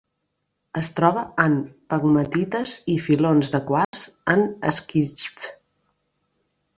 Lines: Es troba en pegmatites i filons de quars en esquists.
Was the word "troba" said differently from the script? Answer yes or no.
no